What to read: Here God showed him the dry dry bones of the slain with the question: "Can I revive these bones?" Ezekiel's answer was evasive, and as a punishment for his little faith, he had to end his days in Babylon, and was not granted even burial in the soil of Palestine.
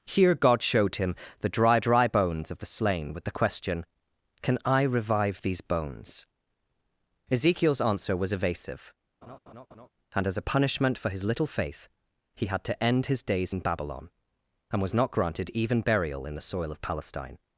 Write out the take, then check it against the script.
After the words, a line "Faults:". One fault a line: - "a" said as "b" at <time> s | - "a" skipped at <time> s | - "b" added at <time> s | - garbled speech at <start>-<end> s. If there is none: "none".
Here God showed him the dry dry bones of the slain with the question: "Can I revive these bones?" Ezekiel's answer was evasive, and as a punishment for his little faith, he had to end his days in Babylon, and was not granted even burial in the soil of Palestine.
Faults:
none